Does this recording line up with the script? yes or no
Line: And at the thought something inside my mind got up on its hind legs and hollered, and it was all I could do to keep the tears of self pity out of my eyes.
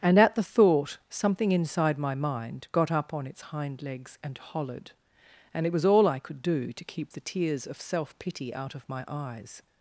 yes